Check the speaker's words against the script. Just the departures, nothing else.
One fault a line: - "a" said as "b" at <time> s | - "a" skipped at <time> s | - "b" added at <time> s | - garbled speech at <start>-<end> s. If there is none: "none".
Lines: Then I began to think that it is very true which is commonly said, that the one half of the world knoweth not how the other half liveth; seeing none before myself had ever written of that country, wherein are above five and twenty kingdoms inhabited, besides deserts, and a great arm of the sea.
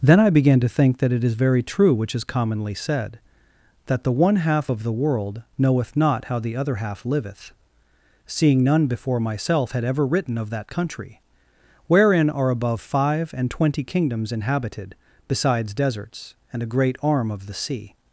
none